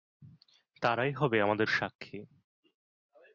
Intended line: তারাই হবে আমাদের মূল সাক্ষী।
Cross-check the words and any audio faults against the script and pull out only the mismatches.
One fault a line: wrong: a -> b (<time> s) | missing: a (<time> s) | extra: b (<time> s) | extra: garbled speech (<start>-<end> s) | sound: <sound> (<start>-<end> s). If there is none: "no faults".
missing: মূল (1.7 s)